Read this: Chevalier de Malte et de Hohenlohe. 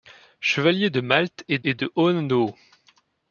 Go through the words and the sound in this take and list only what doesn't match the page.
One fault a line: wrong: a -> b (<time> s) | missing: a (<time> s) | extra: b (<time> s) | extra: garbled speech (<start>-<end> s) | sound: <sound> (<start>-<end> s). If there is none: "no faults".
extra: et (1.6 s)